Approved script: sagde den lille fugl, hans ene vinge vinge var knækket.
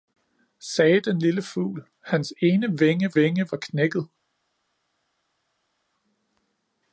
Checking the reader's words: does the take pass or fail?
pass